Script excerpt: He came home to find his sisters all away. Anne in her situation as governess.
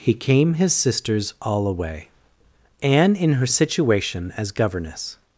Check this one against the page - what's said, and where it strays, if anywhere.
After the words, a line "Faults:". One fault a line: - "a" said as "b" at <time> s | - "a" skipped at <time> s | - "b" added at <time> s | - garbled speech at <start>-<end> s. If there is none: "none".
He came his sisters all away. Anne in her situation as governess.
Faults:
- "home to find" skipped at 0.6 s